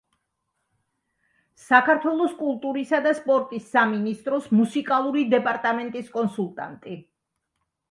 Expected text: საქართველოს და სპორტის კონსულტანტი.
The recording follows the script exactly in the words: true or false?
false